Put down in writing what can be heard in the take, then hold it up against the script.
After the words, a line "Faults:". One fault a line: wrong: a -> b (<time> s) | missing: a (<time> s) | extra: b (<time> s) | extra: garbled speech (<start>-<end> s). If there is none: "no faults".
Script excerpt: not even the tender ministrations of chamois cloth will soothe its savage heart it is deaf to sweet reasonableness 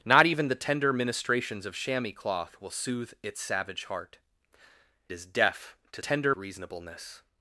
not even the tender ministrations of chamois cloth will soothe its savage heart is deaf to tender reasonableness
Faults:
missing: it (4.2 s)
wrong: sweet -> tender (6.0 s)